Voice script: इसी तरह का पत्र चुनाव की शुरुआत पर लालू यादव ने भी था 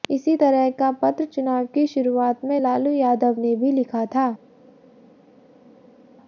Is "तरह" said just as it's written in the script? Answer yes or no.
yes